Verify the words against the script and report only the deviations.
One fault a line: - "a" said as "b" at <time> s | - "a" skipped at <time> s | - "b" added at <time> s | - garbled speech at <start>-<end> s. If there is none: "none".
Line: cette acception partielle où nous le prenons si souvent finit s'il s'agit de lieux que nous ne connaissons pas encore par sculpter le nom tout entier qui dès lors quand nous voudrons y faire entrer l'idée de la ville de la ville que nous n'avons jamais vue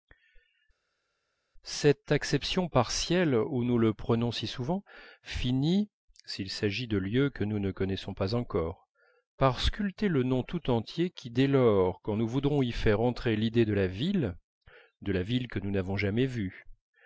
none